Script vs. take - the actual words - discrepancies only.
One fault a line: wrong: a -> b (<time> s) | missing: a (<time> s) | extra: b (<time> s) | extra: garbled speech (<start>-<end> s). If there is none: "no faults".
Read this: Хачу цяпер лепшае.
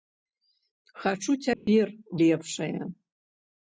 no faults